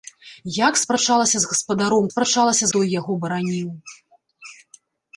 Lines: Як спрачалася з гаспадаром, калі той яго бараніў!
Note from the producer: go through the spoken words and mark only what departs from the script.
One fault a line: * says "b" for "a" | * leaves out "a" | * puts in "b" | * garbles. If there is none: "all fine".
* says "спрачалася" for "калі"